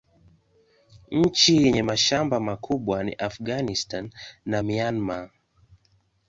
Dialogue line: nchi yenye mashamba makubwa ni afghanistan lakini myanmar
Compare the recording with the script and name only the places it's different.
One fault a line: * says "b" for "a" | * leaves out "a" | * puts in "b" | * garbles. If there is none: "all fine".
* says "na" for "lakini"